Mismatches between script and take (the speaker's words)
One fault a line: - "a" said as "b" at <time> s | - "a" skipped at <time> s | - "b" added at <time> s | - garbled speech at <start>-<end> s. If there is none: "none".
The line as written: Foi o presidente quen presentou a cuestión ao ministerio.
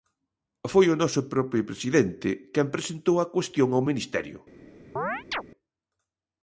- "noso propio" added at 1.0 s